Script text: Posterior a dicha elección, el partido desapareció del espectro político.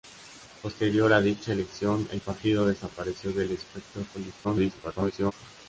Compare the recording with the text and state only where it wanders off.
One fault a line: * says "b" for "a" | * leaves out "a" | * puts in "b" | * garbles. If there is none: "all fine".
* garbles